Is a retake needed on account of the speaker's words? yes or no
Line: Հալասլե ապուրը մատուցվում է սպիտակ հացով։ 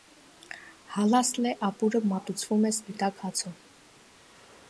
no